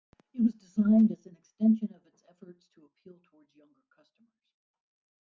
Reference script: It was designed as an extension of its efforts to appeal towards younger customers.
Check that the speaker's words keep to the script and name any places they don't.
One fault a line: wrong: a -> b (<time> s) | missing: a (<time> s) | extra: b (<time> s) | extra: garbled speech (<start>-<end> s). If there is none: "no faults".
no faults